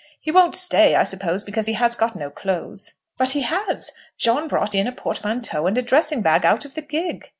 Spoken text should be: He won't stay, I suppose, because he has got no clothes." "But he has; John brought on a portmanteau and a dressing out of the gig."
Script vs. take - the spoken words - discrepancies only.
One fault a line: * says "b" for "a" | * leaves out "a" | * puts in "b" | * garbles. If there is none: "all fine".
* says "in" for "on"
* puts in "bag"